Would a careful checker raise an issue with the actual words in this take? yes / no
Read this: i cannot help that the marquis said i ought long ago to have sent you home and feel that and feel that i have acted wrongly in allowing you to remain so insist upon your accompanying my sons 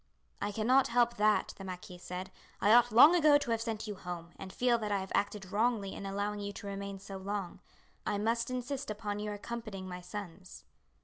yes